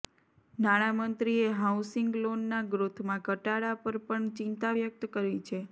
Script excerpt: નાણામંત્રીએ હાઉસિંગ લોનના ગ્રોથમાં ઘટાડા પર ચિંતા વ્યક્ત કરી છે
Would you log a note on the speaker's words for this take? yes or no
yes